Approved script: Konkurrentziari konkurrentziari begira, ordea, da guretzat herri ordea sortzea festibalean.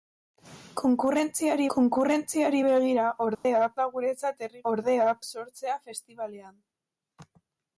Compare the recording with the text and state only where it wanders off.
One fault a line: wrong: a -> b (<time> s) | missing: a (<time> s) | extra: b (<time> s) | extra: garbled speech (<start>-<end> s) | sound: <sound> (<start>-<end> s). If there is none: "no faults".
sound: dropout (3.3-3.4 s)